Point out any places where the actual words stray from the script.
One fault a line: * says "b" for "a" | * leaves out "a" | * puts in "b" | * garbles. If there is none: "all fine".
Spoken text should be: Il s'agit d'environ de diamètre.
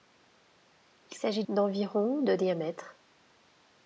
all fine